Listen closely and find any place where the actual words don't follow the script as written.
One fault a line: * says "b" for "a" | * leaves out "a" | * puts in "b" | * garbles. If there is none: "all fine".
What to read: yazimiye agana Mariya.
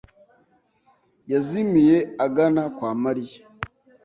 * puts in "kwa"